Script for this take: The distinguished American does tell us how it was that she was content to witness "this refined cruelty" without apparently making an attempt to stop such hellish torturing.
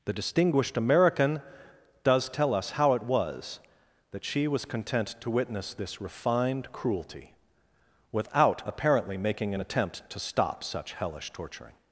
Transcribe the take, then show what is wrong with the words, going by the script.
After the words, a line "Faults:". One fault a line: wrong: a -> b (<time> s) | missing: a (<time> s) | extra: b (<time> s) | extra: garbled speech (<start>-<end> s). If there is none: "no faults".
The distinguished American does tell us how it was that she was content to witness "this refined cruelty" without apparently making an attempt to stop such hellish torturing.
Faults:
no faults